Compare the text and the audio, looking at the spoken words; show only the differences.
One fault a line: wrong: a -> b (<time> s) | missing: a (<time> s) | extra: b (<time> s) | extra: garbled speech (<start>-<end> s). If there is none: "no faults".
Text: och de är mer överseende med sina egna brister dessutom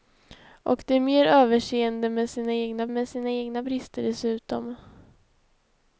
extra: med sina egna (2.9 s)